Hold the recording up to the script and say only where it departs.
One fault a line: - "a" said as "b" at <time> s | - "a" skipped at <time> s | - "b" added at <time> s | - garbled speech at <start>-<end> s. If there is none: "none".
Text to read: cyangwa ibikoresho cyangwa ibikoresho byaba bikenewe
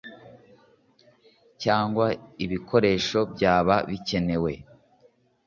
- "cyangwa ibikoresho" skipped at 3.2 s